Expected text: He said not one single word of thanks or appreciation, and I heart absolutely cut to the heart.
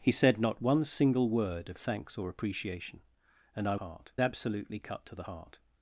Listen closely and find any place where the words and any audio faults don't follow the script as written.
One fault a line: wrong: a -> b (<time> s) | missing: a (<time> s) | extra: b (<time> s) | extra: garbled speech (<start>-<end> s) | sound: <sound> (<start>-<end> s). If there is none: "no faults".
no faults